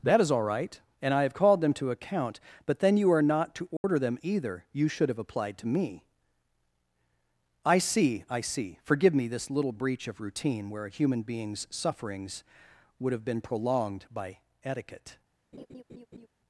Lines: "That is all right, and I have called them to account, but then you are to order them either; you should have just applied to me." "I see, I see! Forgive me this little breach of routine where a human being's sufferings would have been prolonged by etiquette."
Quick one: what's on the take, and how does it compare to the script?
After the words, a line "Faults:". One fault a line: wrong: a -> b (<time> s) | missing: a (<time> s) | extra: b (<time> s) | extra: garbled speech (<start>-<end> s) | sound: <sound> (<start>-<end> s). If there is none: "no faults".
"That is all right, and I have called them to account, but then you are not to order them either; you should have applied to me." "I see, I see! Forgive me this little breach of routine where a human being's sufferings would have been prolonged by etiquette."
Faults:
extra: not (3.2 s)
sound: dropout (3.8-3.8 s)
missing: just (5.2 s)
sound: laugh (15.5-16.3 s)